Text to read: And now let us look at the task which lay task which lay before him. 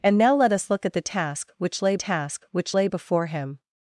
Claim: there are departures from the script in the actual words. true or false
false